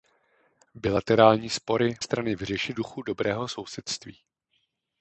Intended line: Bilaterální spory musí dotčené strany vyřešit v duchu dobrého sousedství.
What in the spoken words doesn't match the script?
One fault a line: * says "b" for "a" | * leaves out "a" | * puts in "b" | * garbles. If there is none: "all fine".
* leaves out "musí dotčené"
* leaves out "v"